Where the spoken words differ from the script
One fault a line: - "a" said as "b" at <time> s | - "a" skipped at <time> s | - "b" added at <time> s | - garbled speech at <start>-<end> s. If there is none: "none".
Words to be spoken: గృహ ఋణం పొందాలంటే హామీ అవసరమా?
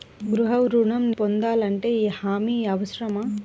none